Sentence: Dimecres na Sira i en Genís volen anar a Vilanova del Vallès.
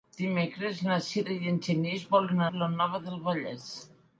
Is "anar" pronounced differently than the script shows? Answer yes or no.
yes